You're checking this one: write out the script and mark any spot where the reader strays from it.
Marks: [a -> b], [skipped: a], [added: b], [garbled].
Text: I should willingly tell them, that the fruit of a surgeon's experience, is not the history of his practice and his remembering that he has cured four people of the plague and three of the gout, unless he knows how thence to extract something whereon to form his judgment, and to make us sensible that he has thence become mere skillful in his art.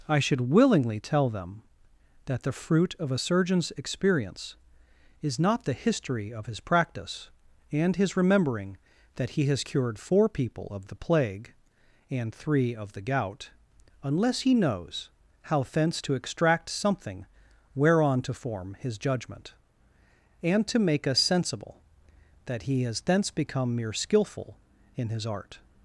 I should willingly tell them, that the fruit of a surgeon's experience, is not the history of his practice and his remembering that he has cured four people of the plague and three of the gout, unless he knows how thence to extract something whereon to form his judgment, and to make us sensible that he has thence become mere skillful in his art.